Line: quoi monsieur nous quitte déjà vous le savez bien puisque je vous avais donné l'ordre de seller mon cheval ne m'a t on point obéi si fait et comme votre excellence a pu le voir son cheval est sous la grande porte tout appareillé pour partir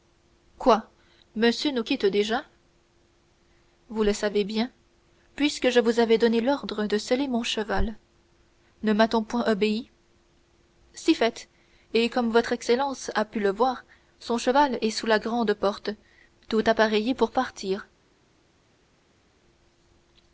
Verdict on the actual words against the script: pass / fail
pass